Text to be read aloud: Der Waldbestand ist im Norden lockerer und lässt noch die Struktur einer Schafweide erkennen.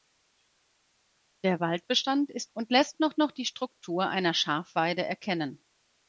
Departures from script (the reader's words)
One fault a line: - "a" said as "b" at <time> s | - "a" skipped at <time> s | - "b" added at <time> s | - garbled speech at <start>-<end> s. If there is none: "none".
- "im Norden lockerer" skipped at 2.5 s
- "noch" added at 3.2 s